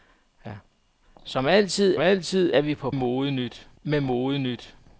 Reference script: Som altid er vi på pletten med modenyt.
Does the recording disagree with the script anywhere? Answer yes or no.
yes